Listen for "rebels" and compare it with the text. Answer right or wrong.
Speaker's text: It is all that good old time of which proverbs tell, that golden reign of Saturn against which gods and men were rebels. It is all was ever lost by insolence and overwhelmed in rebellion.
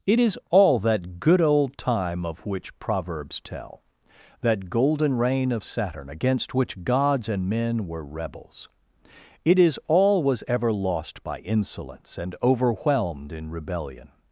right